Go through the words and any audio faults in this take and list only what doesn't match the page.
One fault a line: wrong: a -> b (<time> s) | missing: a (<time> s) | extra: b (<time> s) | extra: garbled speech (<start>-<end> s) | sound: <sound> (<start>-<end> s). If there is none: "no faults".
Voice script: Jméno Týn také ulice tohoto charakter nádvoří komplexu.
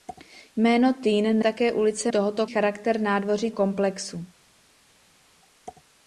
no faults